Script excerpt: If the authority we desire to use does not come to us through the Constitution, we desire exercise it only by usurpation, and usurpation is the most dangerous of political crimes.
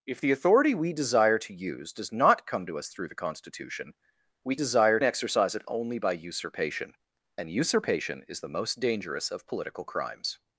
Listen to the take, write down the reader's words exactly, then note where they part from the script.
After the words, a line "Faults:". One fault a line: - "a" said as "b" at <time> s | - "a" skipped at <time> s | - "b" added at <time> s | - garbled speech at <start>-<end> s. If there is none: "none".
If the authority we desire to use does not come to us through the Constitution, we desire exercise it only by usurpation, and usurpation is the most dangerous of political crimes.
Faults:
none